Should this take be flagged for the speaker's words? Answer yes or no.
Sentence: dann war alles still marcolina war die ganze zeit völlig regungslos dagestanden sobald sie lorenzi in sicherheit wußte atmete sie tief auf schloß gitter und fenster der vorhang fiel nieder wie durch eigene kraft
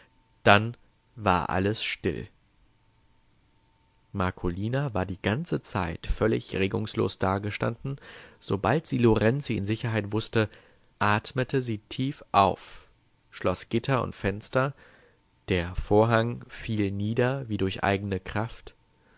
no